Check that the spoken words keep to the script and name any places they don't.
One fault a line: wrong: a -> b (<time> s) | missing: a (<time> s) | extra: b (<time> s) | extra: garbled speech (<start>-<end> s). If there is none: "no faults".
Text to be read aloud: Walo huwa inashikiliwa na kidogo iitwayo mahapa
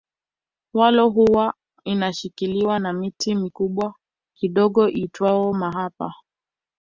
extra: miti mikubwa (2.9 s)